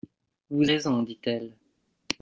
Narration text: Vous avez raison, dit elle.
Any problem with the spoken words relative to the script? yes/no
yes